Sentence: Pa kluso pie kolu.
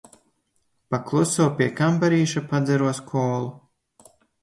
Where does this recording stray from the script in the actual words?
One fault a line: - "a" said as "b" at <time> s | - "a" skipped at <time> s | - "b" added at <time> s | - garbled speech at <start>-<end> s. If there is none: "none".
- "kambarīša padzeros" added at 1.8 s